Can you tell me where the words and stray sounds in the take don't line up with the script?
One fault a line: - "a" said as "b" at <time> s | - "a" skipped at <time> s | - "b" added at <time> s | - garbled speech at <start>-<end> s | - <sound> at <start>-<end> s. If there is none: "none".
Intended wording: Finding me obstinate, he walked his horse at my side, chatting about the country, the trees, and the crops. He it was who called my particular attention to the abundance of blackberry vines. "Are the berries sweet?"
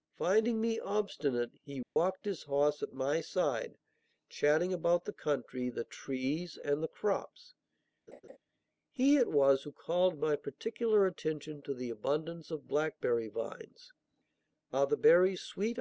- dropout at 1.8-2.0 s
- laugh at 8.1-8.4 s